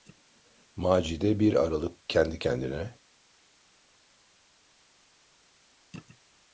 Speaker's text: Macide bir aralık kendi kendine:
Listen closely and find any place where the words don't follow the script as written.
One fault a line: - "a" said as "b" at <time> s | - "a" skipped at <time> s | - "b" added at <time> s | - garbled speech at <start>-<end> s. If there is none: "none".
none